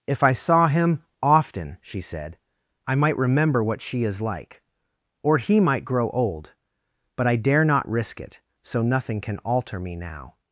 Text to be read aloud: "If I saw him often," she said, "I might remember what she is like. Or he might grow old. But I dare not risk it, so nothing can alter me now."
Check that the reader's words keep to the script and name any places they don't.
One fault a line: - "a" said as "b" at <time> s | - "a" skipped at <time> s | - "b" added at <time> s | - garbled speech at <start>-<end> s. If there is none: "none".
none